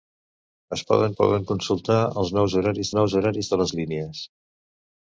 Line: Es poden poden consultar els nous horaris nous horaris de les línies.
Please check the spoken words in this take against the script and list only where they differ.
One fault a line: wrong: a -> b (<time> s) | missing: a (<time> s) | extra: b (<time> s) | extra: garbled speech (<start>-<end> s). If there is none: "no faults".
no faults